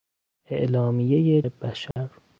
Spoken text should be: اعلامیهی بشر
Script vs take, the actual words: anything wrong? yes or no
no